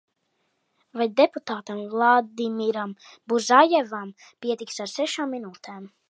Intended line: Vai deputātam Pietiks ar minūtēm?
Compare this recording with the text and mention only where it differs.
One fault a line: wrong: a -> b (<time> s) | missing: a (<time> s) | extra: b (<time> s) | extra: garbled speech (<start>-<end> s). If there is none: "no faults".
extra: Vladimiram Buzajevam (1.9 s)
extra: sešām (4.9 s)